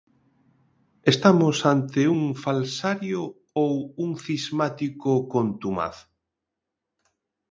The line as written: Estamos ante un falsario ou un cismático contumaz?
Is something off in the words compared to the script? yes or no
no